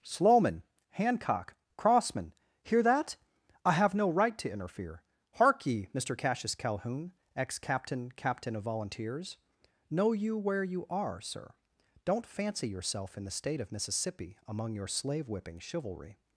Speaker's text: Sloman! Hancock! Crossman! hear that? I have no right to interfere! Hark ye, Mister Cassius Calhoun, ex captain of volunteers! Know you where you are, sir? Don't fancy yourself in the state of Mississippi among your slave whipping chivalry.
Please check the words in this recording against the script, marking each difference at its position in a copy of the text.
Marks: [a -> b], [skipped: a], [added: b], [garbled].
Sloman! Hancock! Crossman! hear that? I have no right to interfere! Hark ye, Mister Cassius Calhoun, ex captain [added: captain] of volunteers! Know you where you are, sir? Don't fancy yourself in the state of Mississippi among your slave whipping chivalry.